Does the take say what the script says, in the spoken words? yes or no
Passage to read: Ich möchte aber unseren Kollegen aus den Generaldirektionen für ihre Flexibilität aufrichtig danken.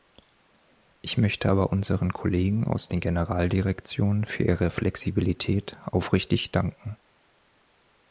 yes